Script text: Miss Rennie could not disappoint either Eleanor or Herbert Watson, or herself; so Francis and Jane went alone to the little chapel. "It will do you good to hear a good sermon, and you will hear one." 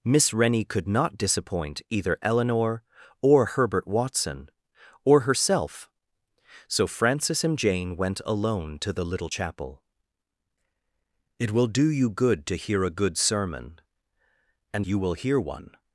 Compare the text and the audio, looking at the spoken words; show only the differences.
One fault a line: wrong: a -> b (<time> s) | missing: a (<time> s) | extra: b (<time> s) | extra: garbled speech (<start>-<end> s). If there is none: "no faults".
no faults